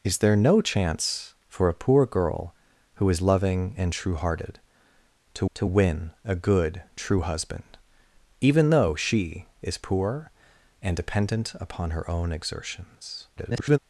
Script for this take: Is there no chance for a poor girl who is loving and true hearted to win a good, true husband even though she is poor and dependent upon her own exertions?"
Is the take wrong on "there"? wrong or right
right